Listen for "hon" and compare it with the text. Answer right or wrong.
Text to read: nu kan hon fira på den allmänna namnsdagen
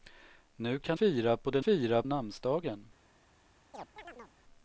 wrong